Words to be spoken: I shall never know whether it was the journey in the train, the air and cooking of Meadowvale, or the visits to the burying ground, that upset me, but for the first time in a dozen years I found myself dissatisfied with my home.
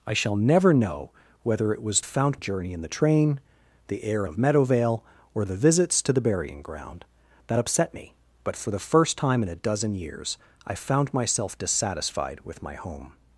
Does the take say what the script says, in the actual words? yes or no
no